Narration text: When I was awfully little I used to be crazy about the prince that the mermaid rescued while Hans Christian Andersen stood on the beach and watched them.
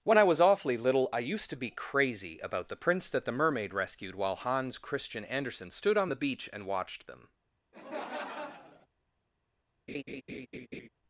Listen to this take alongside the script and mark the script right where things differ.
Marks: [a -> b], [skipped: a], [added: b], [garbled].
When I was awfully little I used to be crazy about the prince that the mermaid rescued while Hans Christian Andersen stood on the beach and watched them.